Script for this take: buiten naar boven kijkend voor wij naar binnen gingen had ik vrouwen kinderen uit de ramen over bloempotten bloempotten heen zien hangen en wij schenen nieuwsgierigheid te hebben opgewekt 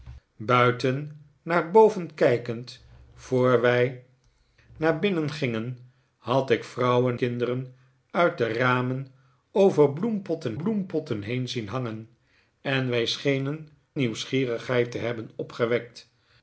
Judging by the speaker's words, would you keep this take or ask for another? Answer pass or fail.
pass